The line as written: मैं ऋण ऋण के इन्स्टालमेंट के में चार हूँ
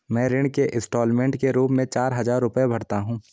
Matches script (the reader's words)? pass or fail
fail